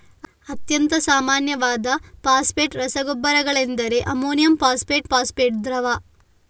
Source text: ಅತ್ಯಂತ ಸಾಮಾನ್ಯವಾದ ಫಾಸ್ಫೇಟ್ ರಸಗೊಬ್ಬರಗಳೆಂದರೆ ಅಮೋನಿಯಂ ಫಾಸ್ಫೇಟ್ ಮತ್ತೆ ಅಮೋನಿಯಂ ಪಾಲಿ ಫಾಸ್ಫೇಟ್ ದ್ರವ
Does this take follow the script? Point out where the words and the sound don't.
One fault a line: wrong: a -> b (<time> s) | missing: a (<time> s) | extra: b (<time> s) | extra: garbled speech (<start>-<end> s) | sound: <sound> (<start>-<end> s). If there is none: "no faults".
missing: ಮತ್ತೆ ಅಮೋನಿಯಂ ಪಾಲಿ (5.1 s)